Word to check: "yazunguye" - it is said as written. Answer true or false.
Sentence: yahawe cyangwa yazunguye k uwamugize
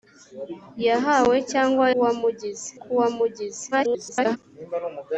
false